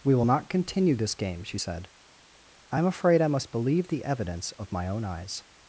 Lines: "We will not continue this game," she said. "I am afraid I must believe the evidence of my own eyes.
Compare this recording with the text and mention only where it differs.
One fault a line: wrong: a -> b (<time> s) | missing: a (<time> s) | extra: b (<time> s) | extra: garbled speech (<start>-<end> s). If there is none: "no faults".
no faults